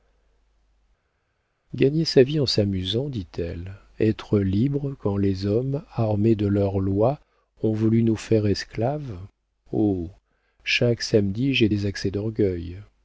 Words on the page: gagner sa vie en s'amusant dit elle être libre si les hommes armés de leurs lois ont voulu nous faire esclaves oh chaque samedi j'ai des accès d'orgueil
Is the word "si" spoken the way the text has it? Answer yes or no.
no